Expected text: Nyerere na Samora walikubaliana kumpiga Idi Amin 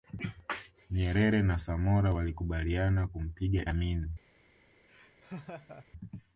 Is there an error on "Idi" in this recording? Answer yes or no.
yes